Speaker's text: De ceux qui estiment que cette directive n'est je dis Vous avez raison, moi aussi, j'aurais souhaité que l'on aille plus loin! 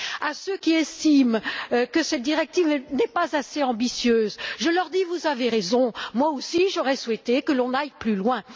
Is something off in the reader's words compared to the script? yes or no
yes